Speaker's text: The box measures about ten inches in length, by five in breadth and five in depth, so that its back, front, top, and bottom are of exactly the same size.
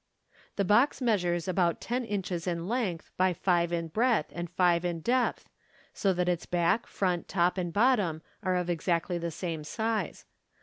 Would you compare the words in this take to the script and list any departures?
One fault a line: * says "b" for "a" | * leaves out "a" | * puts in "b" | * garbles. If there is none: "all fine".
all fine